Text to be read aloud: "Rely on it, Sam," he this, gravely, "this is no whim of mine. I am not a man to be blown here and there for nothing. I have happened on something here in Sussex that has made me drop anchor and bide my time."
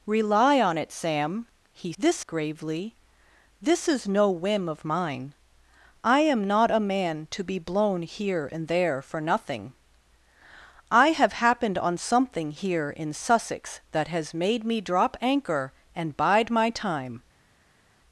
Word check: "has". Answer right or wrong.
right